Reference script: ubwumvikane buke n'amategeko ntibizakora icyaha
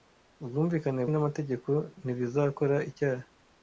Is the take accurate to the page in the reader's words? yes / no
no